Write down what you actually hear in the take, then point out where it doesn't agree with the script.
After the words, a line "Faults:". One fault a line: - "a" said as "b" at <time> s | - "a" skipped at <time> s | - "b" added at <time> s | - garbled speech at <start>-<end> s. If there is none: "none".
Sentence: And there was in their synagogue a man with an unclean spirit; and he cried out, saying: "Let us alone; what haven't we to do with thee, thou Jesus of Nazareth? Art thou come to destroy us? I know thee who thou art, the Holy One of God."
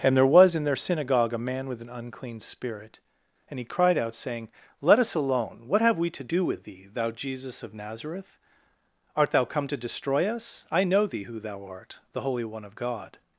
And there was in their synagogue a man with an unclean spirit; and he cried out, saying: "Let us alone; what have we to do with thee, thou Jesus of Nazareth? Art thou come to destroy us? I know thee who thou art, the Holy One of God."
Faults:
- "haven't" said as "have" at 5.8 s